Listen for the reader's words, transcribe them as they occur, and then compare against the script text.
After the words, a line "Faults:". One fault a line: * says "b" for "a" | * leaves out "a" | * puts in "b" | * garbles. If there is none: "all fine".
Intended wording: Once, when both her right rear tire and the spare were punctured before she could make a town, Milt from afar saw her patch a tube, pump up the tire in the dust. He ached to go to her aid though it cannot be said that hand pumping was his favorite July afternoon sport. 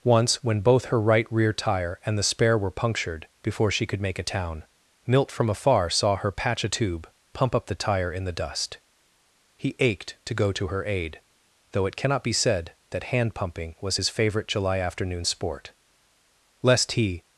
Once, when both her right rear tire and the spare were punctured before she could make a town, Milt from afar saw her patch a tube, pump up the tire in the dust. He ached to go to her aid though it cannot be said that hand pumping was his favorite July afternoon sport. Lest he
Faults:
* puts in "Lest he"